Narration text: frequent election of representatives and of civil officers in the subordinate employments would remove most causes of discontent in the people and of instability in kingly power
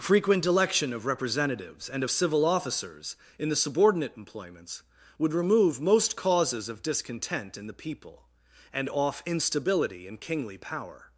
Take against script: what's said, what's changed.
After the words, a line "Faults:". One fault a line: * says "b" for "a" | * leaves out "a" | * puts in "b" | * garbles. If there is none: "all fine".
frequent election of representatives and of civil officers in the subordinate employments would remove most causes of discontent in the people and off instability in kingly power
Faults:
* says "off" for "of"